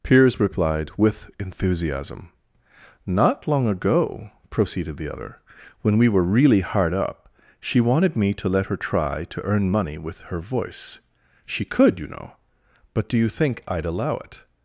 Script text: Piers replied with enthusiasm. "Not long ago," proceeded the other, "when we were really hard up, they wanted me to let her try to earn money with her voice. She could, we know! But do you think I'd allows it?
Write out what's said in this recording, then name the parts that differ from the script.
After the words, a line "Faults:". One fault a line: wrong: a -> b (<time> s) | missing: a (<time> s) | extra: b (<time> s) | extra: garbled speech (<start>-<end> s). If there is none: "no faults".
Piers replied with enthusiasm. "Not long ago," proceeded the other, "when we were really hard up, she wanted me to let her try to earn money with her voice. She could, you know! But do you think I'd allow it?
Faults:
wrong: they -> she (7.6 s)
wrong: we -> you (12.0 s)
wrong: allows -> allow (13.9 s)